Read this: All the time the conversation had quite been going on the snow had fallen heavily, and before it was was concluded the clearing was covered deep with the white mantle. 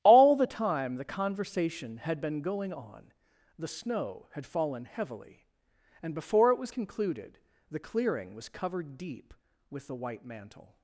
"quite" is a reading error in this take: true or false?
true